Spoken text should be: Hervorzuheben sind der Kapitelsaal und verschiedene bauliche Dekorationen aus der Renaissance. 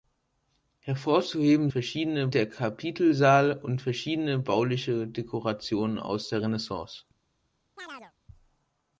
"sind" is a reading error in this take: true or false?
true